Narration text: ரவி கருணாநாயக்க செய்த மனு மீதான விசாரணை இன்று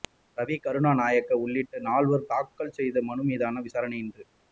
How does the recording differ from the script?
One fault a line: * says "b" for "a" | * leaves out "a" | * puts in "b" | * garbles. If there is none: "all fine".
* puts in "உள்ளிட்ட நால்வர் தாக்கல்"